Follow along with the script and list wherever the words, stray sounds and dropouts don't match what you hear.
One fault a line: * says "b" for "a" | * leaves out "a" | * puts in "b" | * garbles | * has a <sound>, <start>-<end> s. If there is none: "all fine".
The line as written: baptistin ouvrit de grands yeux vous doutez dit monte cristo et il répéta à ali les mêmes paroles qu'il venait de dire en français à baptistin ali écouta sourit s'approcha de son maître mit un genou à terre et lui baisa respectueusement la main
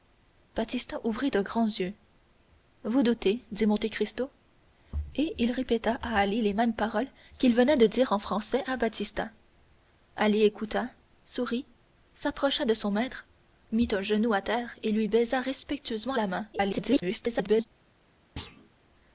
* garbles
* has a thud, 18.4-18.7 s